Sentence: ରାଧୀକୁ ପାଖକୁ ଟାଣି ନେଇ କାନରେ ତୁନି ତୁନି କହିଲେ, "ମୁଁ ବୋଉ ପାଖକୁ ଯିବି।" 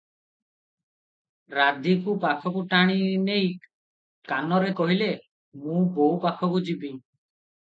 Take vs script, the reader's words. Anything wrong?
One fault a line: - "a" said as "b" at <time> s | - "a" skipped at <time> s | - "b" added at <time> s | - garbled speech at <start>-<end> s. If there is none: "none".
- "ତୁନି ତୁନି" skipped at 4.7 s